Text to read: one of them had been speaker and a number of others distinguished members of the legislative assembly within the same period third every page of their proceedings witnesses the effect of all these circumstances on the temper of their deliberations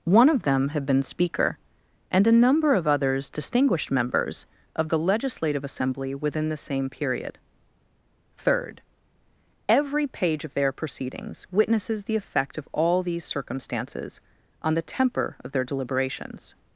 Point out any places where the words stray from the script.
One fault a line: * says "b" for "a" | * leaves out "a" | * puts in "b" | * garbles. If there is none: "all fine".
all fine